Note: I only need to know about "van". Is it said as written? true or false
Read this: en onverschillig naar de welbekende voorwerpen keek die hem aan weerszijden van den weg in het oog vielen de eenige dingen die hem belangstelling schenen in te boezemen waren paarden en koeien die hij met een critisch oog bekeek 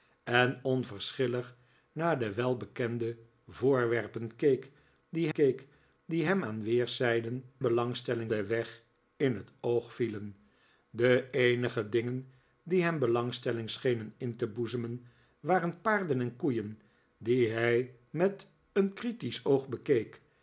false